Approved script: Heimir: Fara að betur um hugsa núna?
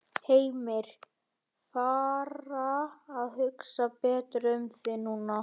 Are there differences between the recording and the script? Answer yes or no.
yes